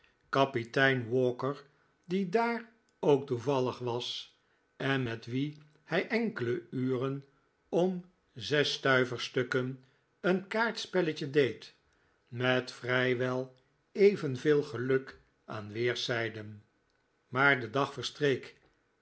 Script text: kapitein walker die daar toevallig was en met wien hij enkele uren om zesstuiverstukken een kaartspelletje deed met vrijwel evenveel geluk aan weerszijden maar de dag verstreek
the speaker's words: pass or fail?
fail